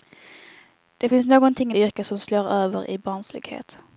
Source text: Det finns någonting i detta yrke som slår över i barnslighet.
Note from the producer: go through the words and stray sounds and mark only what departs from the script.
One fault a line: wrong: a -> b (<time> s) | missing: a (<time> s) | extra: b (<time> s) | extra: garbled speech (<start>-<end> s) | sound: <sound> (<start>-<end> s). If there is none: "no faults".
missing: detta (1.7 s)